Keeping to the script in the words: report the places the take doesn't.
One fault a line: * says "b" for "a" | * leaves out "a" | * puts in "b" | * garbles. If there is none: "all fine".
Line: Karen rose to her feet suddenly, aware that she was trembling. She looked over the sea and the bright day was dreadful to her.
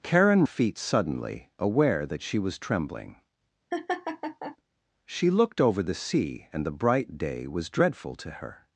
* leaves out "rose to her"